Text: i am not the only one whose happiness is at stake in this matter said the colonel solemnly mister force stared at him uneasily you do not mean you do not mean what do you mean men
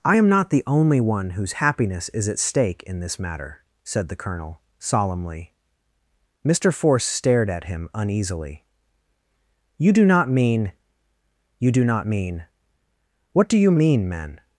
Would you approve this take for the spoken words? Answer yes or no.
yes